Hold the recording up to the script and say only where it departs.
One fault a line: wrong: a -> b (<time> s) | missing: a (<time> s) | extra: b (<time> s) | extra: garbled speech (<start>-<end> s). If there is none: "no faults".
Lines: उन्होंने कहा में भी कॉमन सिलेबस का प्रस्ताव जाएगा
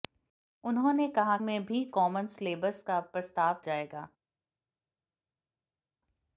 no faults